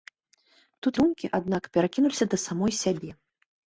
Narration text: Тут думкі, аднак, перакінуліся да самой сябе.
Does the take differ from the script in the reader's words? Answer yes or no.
no